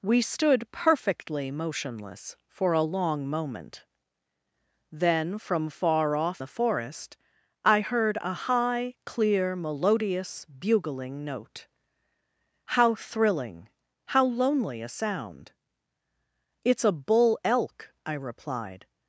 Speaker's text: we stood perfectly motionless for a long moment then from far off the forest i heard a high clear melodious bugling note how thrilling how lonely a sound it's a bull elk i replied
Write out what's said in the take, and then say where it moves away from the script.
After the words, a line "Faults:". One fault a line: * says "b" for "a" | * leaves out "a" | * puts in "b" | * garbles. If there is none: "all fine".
we stood perfectly motionless for a long moment then from far off the forest i heard a high clear melodious bugling note how thrilling how lonely a sound it's a bull elk i replied
Faults:
all fine